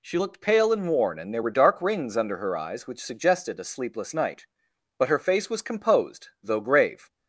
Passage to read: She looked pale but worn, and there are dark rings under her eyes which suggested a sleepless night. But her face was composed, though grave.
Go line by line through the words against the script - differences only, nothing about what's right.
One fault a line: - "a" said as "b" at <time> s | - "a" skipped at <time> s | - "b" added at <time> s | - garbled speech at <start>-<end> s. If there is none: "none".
- "but" said as "and" at 0.7 s
- "are" said as "were" at 1.4 s